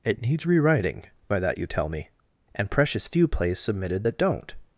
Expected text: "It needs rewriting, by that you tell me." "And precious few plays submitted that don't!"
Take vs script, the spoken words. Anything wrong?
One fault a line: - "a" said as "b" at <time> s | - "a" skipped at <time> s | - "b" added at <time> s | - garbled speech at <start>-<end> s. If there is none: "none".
none